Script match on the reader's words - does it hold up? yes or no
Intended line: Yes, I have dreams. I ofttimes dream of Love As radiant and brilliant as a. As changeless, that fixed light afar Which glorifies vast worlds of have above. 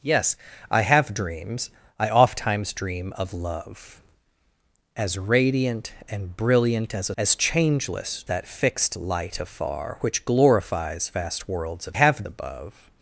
yes